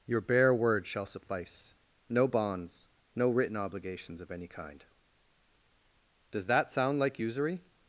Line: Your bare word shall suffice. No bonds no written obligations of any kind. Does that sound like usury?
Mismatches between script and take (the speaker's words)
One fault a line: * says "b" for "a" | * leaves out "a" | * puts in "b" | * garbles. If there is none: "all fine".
all fine